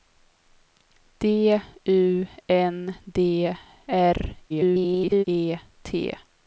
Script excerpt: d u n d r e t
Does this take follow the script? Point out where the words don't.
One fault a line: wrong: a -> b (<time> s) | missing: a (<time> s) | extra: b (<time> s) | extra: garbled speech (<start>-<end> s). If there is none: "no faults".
extra: garbled speech (4.5-5.2 s)